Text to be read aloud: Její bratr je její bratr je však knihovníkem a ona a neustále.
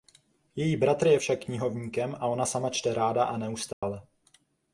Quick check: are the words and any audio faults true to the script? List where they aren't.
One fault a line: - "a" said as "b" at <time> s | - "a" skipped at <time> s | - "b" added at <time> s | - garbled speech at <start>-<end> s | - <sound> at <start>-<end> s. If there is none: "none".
- "její bratr je" skipped at 1.2 s
- "sama čte ráda" added at 2.4 s
- dropout at 3.7-3.8 s